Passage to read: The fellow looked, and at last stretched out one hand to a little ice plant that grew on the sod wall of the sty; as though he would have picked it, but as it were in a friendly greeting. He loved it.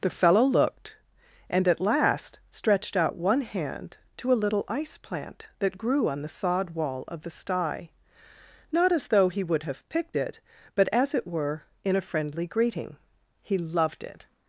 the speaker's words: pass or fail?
fail